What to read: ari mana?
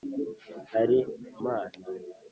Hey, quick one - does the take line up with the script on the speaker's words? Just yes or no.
yes